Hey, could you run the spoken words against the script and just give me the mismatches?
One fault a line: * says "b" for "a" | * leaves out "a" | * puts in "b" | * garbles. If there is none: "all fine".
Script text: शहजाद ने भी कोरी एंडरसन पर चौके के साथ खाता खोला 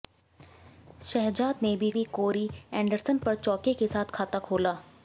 * puts in "भी"